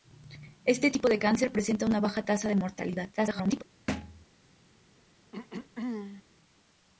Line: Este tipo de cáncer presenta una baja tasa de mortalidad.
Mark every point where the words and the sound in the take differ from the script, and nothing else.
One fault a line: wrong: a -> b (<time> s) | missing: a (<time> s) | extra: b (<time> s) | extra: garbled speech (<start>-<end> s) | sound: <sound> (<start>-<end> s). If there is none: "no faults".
extra: garbled speech (3.2-3.6 s)
sound: thud (3.9-4.3 s)
sound: throat clearing (5.3-6.2 s)